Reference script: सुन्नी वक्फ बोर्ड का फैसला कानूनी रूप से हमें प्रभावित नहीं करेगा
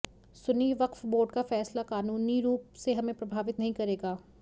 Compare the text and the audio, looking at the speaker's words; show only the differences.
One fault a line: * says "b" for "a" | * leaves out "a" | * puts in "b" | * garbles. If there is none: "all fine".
all fine